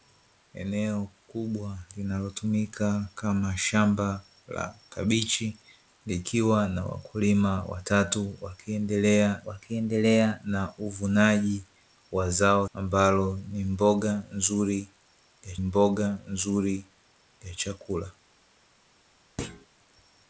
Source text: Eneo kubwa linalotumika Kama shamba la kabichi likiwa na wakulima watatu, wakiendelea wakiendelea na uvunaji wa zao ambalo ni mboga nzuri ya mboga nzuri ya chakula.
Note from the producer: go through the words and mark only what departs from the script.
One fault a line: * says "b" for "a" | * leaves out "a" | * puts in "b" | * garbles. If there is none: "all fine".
all fine